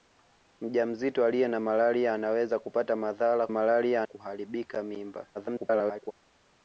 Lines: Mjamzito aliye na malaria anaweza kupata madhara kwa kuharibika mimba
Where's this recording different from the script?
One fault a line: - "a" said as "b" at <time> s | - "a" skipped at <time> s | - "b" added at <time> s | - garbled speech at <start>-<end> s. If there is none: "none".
- "kwa" said as "malaria" at 3.5 s
- garbled speech at 5.3-6.1 s